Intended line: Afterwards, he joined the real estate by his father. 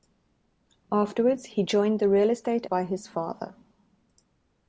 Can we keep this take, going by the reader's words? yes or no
yes